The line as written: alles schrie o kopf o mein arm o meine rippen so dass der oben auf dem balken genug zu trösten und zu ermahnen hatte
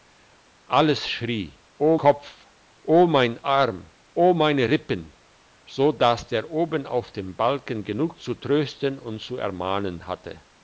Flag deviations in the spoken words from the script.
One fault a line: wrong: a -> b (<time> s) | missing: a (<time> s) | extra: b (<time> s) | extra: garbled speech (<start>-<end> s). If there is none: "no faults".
no faults